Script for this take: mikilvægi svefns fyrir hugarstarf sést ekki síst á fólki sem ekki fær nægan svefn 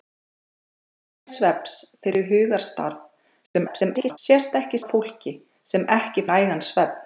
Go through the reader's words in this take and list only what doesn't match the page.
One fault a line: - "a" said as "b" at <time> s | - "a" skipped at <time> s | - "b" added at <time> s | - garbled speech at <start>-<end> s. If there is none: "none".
- garbled speech at 3.5-4.2 s
- "síst" skipped at 4.8 s
- "fær" skipped at 6.3 s